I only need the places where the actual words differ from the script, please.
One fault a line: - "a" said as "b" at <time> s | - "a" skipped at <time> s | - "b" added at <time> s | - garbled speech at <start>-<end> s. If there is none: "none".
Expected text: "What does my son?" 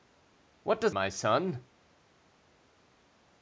none